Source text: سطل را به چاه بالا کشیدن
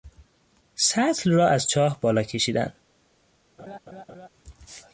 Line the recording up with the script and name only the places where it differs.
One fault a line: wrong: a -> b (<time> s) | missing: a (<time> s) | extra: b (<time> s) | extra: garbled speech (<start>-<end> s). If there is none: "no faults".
wrong: به -> از (1.5 s)